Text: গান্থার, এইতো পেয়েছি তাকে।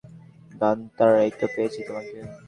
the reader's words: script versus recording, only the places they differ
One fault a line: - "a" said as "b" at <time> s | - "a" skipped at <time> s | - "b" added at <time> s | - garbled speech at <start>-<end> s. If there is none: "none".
- "তাকে" said as "তোমাকে" at 1.9 s